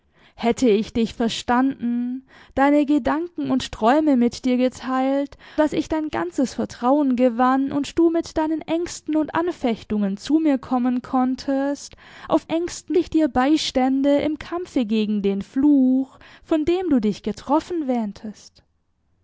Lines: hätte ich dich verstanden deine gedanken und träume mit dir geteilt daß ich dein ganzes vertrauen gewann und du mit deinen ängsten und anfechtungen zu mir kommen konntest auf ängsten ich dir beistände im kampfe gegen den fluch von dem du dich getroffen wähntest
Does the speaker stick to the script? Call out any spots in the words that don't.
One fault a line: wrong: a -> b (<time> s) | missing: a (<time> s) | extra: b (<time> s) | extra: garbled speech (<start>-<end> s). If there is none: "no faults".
no faults